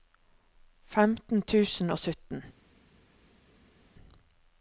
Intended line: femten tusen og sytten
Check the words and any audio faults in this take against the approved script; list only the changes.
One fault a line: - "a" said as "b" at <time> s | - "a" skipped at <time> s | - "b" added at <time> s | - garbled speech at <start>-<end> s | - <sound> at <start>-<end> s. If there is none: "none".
none